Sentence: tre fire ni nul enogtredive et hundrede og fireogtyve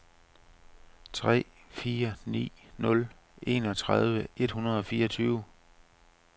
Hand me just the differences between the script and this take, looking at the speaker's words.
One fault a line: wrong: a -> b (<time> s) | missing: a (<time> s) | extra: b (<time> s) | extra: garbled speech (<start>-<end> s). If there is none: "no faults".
no faults